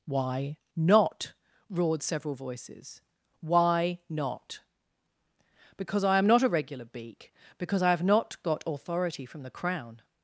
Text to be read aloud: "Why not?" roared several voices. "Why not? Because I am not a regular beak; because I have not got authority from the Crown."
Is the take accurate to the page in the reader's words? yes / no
yes